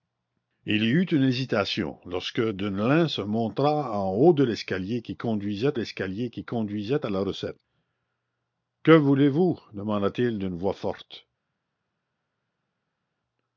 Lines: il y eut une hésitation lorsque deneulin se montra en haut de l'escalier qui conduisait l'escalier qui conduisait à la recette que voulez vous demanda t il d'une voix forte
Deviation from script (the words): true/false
false